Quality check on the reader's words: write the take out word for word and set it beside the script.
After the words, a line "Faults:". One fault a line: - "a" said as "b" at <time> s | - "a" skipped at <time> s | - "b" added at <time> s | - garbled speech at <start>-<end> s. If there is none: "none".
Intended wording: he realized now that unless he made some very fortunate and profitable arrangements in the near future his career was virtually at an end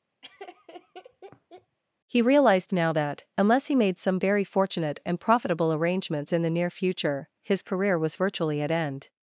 he realized now that unless he made some very fortunate and profitable arrangements in the near future his career was virtually at end
Faults:
- "an" skipped at 8.7 s